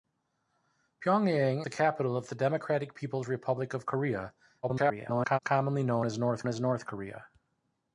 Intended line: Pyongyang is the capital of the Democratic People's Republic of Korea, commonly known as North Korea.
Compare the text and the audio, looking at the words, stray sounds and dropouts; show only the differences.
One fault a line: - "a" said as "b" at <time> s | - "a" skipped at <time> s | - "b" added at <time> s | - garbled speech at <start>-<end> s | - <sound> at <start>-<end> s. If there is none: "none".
- "is" skipped at 1.6 s
- garbled speech at 4.6-5.4 s
- "as North" added at 6.5 s